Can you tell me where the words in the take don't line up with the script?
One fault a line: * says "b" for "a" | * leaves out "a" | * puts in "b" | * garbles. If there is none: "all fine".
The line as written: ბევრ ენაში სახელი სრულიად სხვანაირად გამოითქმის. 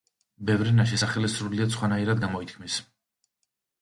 all fine